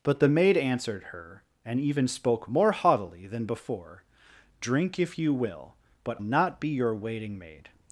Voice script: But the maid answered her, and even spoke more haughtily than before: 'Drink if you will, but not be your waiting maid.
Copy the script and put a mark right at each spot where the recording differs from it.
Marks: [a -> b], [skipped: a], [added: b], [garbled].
But the maid answered her, and even spoke more haughtily than before: 'Drink if you will, but not be your waiting maid.